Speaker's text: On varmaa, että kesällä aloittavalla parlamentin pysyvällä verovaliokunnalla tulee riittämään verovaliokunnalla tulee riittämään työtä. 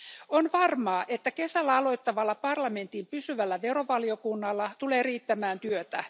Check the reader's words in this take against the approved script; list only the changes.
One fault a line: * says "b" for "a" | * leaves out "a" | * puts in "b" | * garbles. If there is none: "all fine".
* leaves out "verovaliokunnalla tulee riittämään"